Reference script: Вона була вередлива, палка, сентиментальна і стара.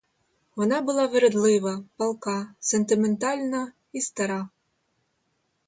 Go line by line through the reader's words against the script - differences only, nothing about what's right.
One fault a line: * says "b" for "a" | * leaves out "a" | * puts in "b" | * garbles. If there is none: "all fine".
all fine